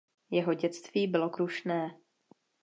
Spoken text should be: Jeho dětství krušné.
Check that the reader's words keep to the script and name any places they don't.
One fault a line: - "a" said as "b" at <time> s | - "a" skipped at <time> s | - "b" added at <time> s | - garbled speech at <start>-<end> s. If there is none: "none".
- "bylo" added at 1.1 s